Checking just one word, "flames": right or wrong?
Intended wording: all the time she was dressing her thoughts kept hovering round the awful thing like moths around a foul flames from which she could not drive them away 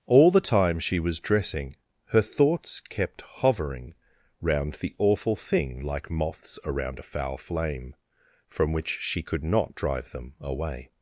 wrong